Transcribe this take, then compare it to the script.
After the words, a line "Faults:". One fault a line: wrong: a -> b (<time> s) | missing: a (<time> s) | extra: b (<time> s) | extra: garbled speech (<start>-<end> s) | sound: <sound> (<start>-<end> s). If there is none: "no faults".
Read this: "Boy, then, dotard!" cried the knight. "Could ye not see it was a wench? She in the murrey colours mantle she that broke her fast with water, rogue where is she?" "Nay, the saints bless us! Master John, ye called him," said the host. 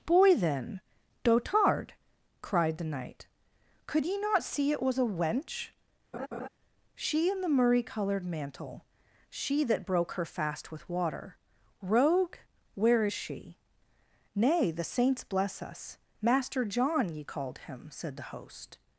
"Boy, then, dotard!" cried the knight. "Could ye not see it was a wench? She in the murrey coloured mantle she that broke her fast with water, rogue where is she?" "Nay, the saints bless us! Master John, ye called him," said the host.
Faults:
sound: laugh (6.1-6.5 s)
wrong: colours -> coloured (7.8 s)